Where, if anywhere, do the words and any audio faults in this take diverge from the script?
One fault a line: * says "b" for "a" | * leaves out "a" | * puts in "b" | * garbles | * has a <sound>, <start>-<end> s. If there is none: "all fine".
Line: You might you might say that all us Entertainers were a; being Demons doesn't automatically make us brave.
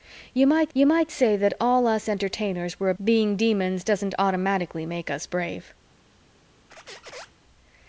* has a squeak, 6.7-7.3 s